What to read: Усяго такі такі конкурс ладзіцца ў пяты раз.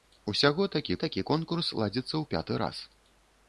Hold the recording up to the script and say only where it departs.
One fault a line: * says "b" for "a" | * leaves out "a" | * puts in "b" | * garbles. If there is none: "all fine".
all fine